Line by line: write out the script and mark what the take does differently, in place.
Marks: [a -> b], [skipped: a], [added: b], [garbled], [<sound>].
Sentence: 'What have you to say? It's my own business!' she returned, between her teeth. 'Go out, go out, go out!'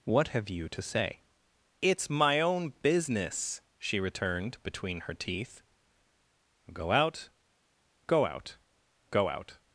'What have you to say? It's my own business!' she returned, between her teeth. 'Go out, go out, go out!'